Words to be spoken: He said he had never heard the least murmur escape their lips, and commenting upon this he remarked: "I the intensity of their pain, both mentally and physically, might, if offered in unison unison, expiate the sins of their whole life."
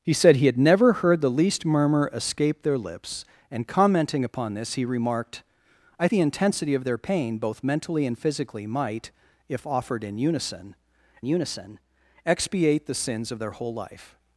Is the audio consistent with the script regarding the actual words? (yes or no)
yes